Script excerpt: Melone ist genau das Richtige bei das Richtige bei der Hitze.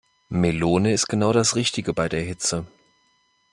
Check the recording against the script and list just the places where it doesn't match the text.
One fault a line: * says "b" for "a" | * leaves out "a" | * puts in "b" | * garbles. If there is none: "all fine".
* leaves out "das Richtige bei"